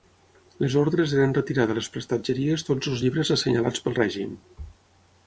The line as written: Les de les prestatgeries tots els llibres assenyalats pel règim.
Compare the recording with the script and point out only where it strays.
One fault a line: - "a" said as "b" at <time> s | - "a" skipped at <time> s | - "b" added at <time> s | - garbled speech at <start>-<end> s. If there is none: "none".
- "ordres eren retirar" added at 0.8 s